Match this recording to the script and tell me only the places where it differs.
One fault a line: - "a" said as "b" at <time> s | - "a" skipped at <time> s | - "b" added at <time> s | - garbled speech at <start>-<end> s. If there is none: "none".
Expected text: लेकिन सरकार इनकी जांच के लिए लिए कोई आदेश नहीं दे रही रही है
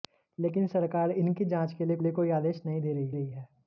none